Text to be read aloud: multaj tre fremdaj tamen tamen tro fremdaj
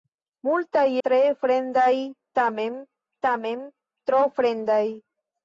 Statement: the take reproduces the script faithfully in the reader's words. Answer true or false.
true